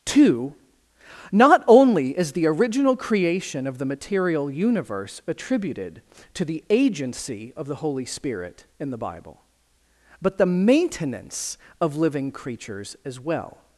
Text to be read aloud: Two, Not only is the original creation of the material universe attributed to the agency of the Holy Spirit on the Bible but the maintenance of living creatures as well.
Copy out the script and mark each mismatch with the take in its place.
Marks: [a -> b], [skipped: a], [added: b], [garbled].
Two, Not only is the original creation of the material universe attributed to the agency of the Holy Spirit [on -> in] the Bible but the maintenance of living creatures as well.